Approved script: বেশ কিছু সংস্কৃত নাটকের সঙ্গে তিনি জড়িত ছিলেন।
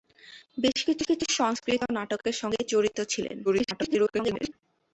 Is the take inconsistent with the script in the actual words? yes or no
yes